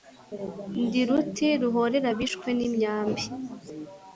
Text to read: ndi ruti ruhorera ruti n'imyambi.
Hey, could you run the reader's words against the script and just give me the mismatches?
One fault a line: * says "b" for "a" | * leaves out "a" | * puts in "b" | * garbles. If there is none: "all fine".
* says "abishwe" for "ruti"